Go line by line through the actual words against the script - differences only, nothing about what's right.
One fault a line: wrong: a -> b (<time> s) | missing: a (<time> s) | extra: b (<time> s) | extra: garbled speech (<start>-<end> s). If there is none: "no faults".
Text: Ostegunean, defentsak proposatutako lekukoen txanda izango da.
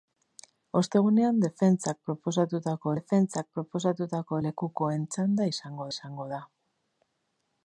extra: defentsak proposatutako (2.9 s)
extra: izango (5.9 s)